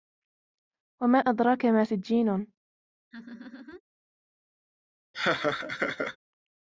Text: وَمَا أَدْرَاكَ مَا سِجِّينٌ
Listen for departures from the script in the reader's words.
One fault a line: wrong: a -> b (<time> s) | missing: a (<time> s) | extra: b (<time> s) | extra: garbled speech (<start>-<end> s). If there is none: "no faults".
no faults